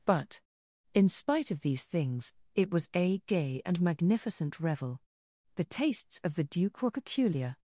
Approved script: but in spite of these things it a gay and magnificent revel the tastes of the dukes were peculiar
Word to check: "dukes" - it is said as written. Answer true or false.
false